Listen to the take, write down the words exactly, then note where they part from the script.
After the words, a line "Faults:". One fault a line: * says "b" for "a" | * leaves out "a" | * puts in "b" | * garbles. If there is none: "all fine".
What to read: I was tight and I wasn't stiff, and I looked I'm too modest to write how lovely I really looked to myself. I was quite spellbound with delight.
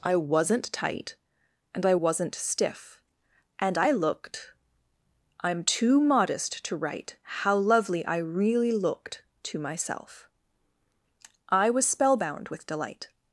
I wasn't tight and I wasn't stiff, and I looked I'm too modest to write how lovely I really looked to myself. I was spellbound with delight.
Faults:
* says "wasn't" for "was"
* leaves out "quite"